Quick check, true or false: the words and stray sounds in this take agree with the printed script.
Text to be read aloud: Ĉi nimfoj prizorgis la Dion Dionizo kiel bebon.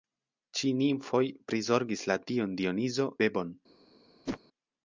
false